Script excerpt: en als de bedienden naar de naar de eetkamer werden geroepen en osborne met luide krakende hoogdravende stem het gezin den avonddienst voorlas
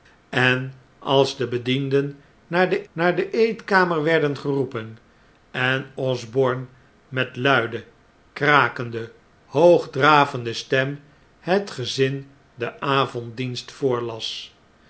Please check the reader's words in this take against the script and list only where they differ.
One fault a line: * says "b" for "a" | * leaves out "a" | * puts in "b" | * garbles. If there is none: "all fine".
all fine